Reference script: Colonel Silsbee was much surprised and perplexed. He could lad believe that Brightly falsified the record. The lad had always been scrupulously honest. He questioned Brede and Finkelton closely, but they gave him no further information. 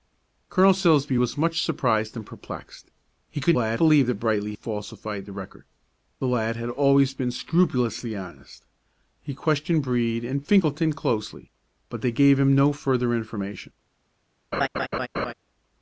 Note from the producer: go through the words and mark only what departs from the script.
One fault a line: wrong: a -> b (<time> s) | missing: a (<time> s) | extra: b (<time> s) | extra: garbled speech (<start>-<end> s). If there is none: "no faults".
no faults